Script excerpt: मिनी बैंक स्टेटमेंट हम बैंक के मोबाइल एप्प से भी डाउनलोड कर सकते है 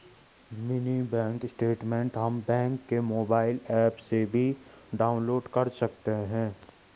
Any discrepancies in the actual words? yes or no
no